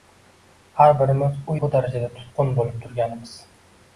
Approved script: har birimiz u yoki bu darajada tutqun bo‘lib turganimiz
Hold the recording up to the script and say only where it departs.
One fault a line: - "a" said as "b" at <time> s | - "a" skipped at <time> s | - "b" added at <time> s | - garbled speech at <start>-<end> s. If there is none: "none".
- "yoki" skipped at 1.6 s